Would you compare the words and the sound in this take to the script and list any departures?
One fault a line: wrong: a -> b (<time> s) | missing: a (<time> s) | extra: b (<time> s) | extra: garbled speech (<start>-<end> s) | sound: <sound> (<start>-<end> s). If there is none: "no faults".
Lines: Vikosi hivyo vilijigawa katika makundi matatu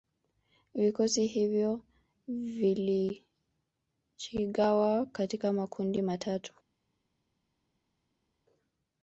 no faults